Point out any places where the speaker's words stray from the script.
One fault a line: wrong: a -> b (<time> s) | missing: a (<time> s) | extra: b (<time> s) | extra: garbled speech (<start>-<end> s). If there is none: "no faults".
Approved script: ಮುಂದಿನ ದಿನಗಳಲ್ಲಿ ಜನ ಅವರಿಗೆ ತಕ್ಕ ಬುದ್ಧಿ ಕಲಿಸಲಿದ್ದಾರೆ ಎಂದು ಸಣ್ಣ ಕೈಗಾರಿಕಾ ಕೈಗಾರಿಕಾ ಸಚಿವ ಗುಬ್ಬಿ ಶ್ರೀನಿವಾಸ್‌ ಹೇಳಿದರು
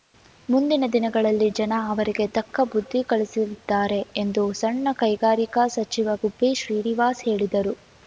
missing: ಕೈಗಾರಿಕಾ (5.7 s)